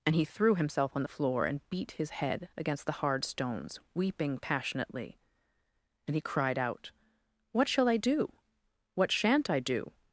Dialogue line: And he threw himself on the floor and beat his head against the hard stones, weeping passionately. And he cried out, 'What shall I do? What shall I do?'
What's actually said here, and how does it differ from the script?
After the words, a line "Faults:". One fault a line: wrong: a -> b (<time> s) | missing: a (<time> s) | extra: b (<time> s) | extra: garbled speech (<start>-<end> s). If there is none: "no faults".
And he threw himself on the floor and beat his head against the hard stones, weeping passionately. And he cried out, 'What shall I do? What shan't I do?'
Faults:
wrong: shall -> shan't (9.1 s)